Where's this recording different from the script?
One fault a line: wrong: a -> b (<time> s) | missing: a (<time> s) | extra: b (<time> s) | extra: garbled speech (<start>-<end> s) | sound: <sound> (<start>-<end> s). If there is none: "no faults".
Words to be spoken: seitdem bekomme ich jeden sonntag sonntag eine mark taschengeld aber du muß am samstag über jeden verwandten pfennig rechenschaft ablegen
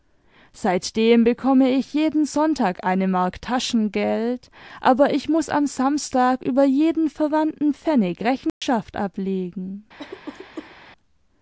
missing: sonntag (2.8 s)
wrong: du -> ich (5.1 s)
sound: dropout (8.5-8.6 s)
sound: cough (10.0-10.8 s)